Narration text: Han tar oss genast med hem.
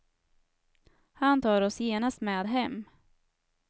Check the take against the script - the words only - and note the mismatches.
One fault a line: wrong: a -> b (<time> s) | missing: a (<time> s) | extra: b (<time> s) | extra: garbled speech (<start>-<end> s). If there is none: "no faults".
no faults